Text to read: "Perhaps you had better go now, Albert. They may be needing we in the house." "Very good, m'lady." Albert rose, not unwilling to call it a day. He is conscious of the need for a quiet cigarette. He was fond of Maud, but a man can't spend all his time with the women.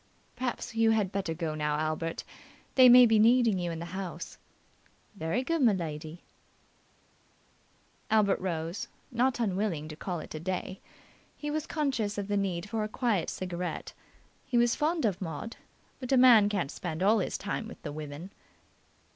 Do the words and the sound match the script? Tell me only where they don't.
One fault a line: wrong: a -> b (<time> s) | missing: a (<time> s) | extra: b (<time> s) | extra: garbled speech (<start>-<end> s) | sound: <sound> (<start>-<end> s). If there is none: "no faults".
wrong: we -> you (3.6 s)
wrong: is -> was (11.5 s)